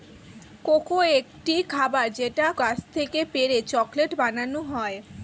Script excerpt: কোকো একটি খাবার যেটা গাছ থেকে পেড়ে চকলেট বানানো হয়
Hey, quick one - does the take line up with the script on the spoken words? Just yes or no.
yes